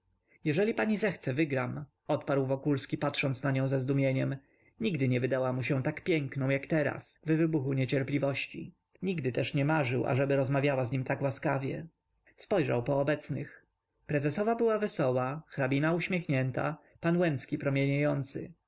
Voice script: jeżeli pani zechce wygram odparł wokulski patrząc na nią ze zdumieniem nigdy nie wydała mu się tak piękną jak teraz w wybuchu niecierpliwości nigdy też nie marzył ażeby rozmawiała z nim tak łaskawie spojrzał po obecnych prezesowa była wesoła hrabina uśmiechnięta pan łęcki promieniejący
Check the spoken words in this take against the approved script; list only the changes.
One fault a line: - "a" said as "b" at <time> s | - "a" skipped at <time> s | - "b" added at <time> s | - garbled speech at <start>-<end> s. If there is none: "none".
none